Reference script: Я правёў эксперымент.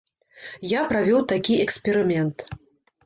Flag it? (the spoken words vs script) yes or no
yes